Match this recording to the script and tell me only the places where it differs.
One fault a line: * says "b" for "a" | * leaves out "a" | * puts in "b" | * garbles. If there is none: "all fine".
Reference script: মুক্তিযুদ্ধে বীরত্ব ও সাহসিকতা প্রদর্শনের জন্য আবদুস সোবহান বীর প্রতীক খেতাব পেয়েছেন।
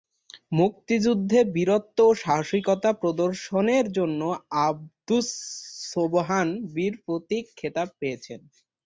all fine